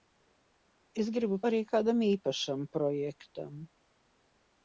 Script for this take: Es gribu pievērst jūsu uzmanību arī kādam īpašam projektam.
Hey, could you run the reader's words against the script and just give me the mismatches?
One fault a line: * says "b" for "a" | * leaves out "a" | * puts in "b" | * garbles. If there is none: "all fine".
* leaves out "pievērst jūsu uzmanību"